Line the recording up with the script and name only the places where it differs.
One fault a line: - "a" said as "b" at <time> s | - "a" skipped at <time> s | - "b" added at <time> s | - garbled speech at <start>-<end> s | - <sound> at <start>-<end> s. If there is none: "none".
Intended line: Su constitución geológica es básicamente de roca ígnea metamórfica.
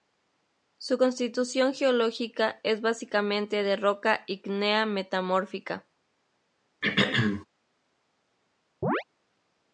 - throat clearing at 6.8-7.5 s
- chirp at 8.8-9.0 s